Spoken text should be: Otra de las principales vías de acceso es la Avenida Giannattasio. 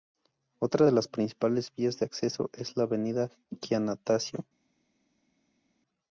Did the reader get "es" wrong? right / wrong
right